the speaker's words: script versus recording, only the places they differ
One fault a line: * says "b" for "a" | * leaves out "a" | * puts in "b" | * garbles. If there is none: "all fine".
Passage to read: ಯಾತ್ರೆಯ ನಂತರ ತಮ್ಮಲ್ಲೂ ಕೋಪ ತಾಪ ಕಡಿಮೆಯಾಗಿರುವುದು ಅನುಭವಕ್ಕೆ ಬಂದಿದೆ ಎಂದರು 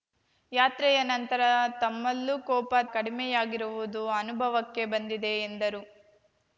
* leaves out "ತಾಪ"